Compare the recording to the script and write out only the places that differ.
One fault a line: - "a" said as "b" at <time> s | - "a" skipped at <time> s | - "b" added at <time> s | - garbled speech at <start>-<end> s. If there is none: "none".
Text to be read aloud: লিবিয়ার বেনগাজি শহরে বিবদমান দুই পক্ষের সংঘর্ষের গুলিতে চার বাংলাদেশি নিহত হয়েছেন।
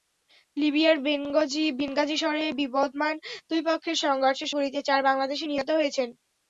none